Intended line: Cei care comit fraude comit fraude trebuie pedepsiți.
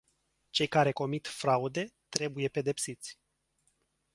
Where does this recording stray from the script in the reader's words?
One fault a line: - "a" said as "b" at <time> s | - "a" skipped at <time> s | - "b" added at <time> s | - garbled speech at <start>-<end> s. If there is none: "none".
- "comit fraude" skipped at 1.9 s